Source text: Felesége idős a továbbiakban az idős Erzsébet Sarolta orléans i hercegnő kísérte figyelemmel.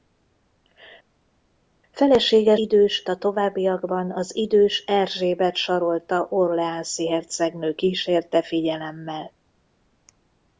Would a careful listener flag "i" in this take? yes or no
no